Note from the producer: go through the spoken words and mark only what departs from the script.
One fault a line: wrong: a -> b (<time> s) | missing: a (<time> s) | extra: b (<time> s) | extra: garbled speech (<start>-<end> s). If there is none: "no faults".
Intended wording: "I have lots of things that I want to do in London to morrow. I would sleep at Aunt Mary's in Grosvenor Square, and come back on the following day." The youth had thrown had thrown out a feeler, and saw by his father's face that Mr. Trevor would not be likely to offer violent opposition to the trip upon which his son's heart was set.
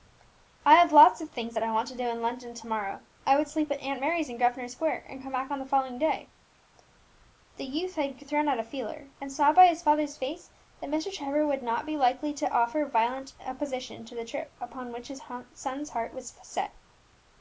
missing: had thrown (8.5 s)